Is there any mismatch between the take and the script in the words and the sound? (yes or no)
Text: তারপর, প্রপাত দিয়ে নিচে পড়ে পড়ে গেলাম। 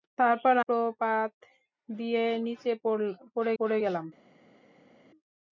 no